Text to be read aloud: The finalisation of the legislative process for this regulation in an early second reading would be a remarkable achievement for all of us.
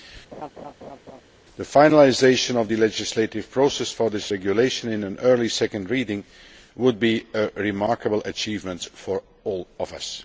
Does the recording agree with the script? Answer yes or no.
yes